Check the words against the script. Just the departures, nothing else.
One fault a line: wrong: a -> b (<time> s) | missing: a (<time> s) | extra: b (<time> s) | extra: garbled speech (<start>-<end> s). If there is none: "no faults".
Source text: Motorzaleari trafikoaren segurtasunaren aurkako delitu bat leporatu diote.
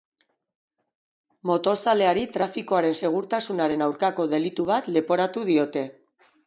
no faults